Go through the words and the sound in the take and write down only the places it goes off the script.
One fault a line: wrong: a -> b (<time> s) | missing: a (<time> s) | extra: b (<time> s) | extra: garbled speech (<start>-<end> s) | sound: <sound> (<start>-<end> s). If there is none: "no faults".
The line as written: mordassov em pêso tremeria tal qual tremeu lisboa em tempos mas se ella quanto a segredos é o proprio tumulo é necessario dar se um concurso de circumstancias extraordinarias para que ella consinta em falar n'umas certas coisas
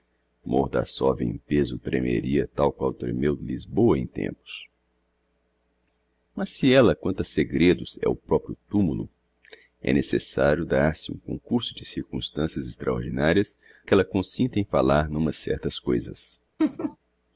missing: para (13.6 s)
sound: laugh (16.6-17.0 s)